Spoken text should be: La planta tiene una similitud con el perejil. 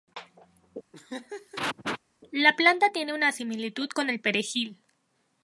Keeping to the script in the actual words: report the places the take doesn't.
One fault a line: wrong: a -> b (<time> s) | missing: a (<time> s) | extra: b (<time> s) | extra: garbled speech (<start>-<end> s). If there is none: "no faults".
no faults